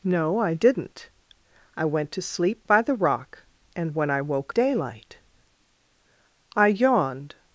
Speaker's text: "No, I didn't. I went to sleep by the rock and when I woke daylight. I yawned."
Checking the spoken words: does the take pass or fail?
pass